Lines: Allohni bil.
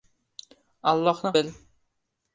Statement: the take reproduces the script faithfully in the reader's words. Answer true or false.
true